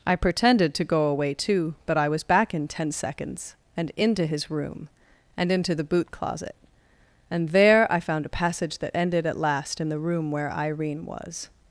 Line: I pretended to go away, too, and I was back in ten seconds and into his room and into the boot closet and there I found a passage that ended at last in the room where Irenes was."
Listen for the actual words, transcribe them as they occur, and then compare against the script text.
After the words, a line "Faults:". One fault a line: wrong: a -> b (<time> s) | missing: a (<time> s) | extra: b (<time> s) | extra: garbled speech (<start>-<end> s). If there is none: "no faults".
I pretended to go away, too, but I was back in ten seconds and into his room and into the boot closet and there I found a passage that ended at last in the room where Irene was."
Faults:
wrong: and -> but (1.9 s)
wrong: Irenes -> Irene (10.5 s)